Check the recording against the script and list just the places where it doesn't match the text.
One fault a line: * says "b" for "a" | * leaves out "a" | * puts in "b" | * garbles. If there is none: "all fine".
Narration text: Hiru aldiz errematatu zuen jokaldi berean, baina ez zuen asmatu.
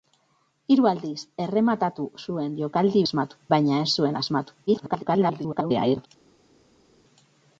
* says "asmatu" for "berean"
* garbles